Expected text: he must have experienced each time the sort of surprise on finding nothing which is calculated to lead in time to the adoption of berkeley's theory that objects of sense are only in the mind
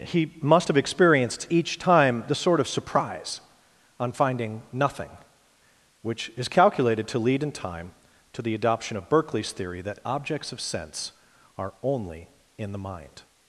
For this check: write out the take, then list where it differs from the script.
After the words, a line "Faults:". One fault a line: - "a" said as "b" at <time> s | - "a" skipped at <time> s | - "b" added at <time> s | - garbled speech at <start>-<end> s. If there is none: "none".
he must have experienced each time the sort of surprise on finding nothing which is calculated to lead in time to the adoption of berkeley's theory that objects of sense are only in the mind
Faults:
none